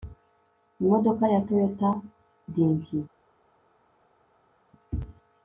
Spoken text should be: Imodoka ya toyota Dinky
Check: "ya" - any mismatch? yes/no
no